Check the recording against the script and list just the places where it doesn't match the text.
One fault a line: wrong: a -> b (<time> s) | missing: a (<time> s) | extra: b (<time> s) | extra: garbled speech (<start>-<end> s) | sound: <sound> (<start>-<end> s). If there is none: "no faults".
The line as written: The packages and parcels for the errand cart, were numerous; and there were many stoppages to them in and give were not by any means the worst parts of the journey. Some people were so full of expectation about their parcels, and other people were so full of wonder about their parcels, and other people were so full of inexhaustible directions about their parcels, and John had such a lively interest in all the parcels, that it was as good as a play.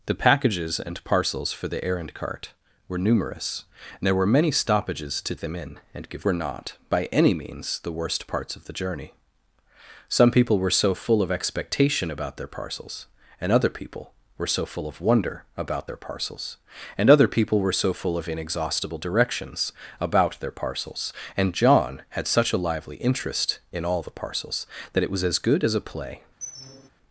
sound: squeak (26.4-26.9 s)